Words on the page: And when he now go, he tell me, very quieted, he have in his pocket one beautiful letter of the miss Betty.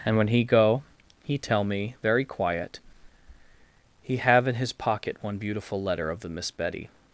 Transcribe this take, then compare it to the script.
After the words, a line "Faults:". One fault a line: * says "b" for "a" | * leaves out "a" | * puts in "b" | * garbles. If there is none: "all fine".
And when he go, he tell me, very quiet, he have in his pocket one beautiful letter of the miss Betty.
Faults:
* leaves out "now"
* says "quiet" for "quieted"